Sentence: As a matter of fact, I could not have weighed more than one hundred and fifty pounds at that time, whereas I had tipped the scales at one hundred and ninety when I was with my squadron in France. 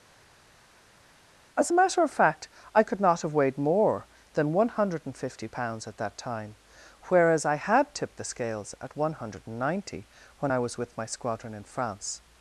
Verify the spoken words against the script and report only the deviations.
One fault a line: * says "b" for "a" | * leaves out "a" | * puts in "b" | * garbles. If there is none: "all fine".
all fine